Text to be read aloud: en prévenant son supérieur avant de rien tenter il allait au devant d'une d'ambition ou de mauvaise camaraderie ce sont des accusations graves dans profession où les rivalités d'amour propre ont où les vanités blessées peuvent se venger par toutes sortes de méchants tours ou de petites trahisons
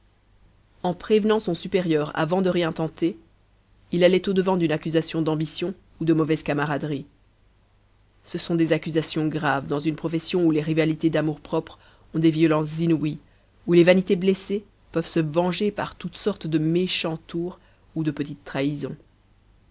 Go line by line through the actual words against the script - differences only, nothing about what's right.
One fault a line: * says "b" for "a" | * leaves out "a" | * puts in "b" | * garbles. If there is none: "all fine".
* puts in "accusation"
* puts in "une"
* puts in "des violences inouïes"